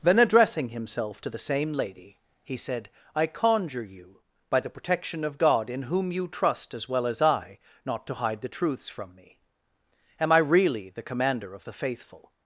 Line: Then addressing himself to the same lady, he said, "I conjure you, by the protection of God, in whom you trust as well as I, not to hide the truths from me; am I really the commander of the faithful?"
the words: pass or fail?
pass